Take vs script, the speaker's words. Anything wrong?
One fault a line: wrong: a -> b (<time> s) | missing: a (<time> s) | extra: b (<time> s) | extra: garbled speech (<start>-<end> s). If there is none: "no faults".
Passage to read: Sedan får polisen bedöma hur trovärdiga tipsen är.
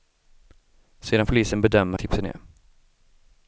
missing: får (1.2 s)
missing: hur trovärdiga (2.0 s)